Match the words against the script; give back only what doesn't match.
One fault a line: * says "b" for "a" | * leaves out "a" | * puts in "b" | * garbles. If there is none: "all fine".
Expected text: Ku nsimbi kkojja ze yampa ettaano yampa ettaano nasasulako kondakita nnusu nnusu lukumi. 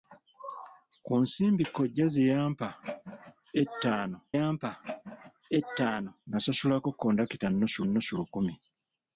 all fine